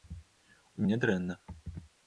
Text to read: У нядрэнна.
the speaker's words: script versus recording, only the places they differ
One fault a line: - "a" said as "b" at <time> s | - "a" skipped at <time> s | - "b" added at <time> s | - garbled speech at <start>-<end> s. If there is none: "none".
none